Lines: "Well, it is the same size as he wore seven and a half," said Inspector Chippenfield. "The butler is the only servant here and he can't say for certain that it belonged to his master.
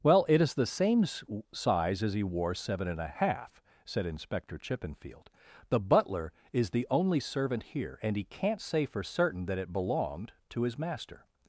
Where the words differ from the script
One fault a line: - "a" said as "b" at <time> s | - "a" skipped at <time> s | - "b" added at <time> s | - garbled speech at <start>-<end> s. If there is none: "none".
none